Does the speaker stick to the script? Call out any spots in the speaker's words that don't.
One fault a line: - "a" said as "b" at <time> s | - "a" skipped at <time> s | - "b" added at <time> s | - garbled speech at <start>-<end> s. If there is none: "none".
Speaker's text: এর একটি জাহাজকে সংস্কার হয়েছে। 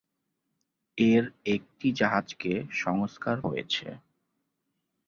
none